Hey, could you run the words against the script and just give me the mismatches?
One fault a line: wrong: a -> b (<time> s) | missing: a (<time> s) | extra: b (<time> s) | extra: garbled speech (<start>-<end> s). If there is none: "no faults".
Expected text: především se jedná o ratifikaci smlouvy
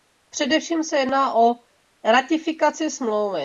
no faults